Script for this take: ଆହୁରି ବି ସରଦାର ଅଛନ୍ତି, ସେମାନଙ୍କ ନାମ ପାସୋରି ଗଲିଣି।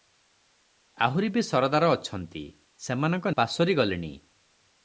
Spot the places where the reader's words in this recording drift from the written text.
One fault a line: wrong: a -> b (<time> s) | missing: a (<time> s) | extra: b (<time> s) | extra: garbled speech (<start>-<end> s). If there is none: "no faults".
missing: ନାମ (3.2 s)